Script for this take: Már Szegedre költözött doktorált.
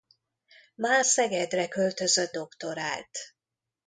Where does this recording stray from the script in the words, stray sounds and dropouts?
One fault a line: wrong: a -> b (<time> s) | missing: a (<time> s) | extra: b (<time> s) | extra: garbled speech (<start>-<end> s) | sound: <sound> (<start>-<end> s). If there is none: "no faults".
no faults